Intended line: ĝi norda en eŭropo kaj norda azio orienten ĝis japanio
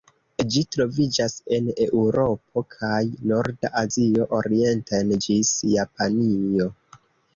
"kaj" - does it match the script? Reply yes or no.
yes